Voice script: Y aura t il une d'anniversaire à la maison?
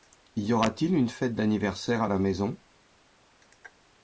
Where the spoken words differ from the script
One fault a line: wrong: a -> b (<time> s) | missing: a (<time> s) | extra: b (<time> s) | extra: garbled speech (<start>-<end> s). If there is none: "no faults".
extra: fête (1.1 s)